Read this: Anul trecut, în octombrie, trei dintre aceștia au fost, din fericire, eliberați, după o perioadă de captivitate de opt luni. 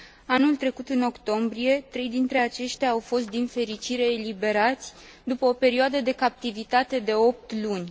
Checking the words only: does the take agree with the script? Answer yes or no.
yes